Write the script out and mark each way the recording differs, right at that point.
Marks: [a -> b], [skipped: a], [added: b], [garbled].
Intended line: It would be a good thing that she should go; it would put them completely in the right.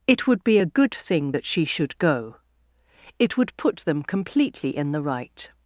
It would be a good thing that she should go; it would put them completely in the right.